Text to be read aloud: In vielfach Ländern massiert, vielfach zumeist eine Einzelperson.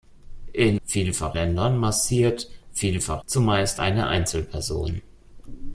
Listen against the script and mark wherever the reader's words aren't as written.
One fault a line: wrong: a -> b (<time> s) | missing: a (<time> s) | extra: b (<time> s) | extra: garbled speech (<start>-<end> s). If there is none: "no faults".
no faults